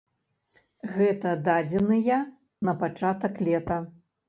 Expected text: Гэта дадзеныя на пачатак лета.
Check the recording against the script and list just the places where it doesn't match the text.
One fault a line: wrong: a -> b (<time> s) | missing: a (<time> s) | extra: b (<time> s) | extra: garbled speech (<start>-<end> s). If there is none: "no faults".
no faults